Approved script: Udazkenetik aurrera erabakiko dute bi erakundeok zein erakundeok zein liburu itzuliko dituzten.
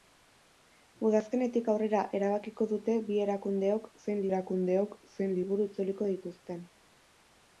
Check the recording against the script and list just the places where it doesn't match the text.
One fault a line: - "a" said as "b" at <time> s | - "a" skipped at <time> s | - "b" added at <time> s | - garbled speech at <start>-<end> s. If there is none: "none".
none